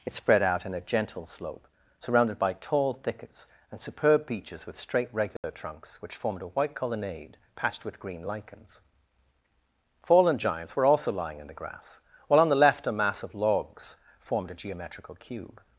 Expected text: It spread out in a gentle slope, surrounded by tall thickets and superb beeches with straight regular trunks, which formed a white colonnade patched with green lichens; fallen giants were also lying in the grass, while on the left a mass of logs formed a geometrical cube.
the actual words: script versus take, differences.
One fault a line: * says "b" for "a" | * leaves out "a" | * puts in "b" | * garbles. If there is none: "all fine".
all fine